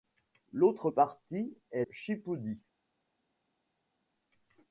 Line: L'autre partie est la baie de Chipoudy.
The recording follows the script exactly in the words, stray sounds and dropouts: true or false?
false